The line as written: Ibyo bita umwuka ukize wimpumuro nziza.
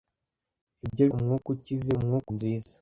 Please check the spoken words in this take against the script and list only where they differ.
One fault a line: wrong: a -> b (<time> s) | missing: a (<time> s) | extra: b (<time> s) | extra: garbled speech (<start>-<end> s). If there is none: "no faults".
missing: bita (1.1 s)
wrong: wimpumuro -> umwuka (2.0 s)